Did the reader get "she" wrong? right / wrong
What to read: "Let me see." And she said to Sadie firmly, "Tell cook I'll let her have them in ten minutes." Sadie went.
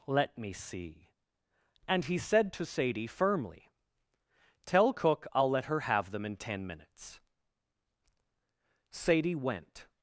wrong